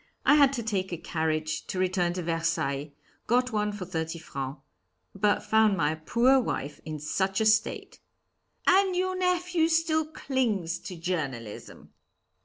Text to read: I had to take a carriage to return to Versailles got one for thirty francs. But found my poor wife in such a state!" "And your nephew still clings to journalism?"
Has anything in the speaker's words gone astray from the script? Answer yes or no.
no